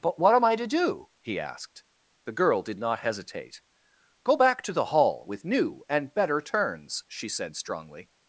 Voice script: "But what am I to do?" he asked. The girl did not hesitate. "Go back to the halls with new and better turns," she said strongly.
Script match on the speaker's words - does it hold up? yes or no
no